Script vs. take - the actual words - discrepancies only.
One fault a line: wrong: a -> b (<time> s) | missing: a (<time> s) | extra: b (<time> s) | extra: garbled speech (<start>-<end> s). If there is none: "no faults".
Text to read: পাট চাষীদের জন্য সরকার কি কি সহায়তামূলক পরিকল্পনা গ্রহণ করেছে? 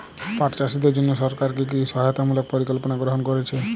no faults